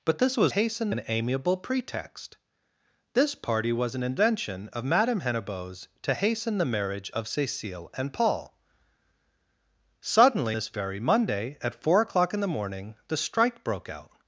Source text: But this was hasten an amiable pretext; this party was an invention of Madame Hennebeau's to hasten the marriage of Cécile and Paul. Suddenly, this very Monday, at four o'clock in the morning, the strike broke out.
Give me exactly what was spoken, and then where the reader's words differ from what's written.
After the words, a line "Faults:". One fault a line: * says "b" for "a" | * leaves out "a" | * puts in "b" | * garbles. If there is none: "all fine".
But this was hasten an amiable pretext; this party was an invention of Madame Hennebeau's to hasten the marriage of Cécile and Paul. Suddenly, this very Monday, at four o'clock in the morning, the strike broke out.
Faults:
all fine